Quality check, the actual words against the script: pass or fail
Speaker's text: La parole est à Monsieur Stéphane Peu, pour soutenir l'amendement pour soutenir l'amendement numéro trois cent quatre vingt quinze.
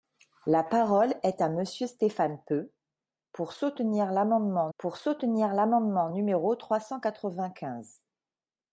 pass